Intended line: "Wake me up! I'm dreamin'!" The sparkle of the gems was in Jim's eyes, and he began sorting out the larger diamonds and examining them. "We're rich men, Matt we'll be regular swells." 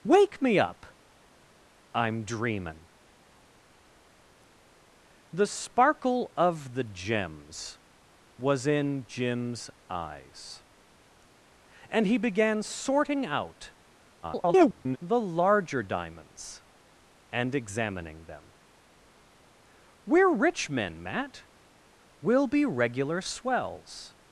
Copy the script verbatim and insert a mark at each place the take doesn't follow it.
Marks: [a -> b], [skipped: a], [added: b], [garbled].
"Wake me up! I'm dreamin'!" The sparkle of the gems was in Jim's eyes, and he began sorting out [garbled] the larger diamonds and examining them. "We're rich men, Matt we'll be regular swells."